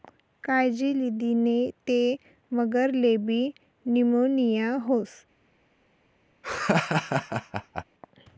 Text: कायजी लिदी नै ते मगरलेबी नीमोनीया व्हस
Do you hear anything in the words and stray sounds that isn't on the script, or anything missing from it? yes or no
yes